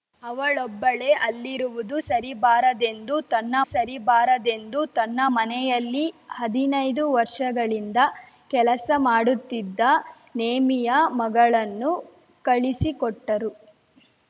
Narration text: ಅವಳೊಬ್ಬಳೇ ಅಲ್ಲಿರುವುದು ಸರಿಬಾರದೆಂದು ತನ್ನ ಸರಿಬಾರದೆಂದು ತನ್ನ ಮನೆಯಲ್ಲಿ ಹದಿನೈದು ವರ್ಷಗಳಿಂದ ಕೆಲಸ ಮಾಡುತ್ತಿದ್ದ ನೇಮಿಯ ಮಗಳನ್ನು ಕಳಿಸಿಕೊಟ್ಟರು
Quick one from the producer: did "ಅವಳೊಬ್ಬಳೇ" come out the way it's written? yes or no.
yes